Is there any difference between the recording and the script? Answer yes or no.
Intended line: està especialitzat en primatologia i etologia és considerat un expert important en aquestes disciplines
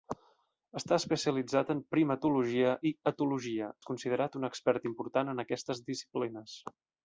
no